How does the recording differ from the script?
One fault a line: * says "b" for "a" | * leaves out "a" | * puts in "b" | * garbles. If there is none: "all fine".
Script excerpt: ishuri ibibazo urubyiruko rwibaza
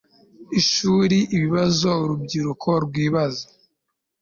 all fine